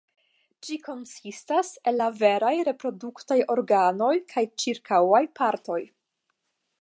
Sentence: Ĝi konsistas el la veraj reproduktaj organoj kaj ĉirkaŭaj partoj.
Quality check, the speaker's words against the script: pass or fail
pass